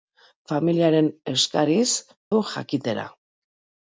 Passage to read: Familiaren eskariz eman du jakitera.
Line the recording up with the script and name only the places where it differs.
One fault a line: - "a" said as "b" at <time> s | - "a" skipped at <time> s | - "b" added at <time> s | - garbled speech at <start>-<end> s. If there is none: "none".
- "eman" skipped at 1.9 s